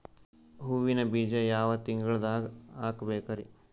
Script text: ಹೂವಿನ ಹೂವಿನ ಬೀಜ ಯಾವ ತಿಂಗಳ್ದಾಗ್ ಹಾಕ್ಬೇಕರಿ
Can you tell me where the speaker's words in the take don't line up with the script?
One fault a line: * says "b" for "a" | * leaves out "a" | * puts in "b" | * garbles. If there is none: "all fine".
* leaves out "ಹೂವಿನ"